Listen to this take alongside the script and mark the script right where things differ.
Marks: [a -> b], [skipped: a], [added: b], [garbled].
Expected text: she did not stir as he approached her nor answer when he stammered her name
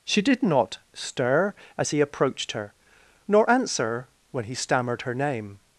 she did not stir as he approached her nor answer when he stammered her name